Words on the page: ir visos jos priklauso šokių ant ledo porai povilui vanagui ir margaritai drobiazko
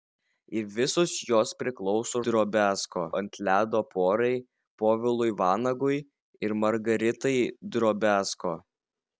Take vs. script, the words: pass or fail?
fail